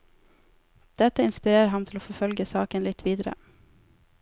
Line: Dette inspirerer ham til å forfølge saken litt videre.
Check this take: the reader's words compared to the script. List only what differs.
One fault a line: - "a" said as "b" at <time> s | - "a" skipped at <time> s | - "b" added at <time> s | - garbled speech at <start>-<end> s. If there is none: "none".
none